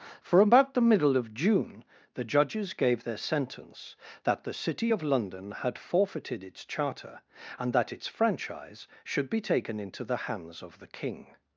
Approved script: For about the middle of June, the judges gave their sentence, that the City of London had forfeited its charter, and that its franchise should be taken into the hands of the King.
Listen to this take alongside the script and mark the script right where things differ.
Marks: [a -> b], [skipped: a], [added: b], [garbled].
For about the middle of June, the judges gave their sentence, that the City of London had forfeited its charter, and that its franchise should be taken into the hands of the King.